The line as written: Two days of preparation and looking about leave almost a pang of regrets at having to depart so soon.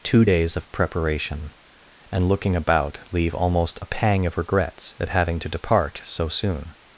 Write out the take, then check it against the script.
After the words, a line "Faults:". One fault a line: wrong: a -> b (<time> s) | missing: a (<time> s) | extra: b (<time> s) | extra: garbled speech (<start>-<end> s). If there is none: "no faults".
Two days of preparation and looking about leave almost a pang of regrets at having to depart so soon.
Faults:
no faults